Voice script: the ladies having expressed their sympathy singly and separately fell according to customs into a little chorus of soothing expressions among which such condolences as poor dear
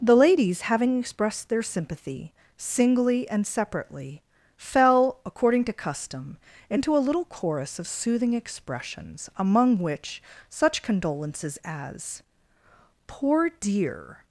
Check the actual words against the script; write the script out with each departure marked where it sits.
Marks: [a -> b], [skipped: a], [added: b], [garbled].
the ladies having expressed their sympathy singly and separately fell according to [customs -> custom] into a little chorus of soothing expressions among which such condolences as poor dear